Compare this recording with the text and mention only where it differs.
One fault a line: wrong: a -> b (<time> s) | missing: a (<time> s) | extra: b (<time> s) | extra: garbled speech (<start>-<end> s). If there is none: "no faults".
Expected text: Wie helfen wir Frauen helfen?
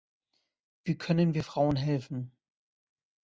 wrong: helfen -> können (1.0 s)